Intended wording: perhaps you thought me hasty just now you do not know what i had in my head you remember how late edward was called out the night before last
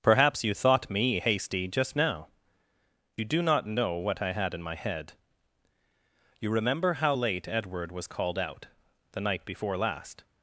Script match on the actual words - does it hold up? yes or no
yes